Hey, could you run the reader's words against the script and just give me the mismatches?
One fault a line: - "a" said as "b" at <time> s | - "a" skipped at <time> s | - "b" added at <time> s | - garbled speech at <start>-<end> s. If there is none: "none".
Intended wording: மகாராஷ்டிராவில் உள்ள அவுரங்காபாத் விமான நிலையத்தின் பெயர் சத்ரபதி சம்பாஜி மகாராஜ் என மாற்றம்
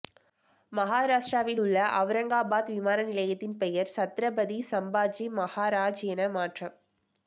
none